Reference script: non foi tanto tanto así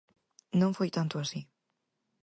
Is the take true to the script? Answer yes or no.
no